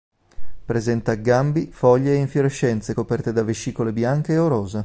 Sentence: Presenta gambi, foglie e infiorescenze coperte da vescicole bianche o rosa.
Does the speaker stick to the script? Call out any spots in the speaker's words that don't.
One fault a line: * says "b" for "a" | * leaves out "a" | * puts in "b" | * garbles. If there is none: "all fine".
all fine